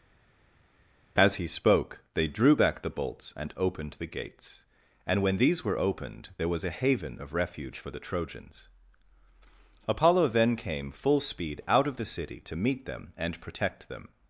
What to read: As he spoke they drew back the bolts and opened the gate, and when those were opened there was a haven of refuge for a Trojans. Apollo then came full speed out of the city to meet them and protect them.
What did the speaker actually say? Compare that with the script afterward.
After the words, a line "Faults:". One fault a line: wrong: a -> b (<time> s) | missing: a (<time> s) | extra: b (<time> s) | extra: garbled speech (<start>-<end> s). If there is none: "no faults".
As he spoke they drew back the bolts and opened the gates, and when these were opened there was a haven of refuge for the Trojans. Apollo then came full speed out of the city to meet them and protect them.
Faults:
wrong: gate -> gates (4.1 s)
wrong: those -> these (5.4 s)
wrong: a -> the (7.9 s)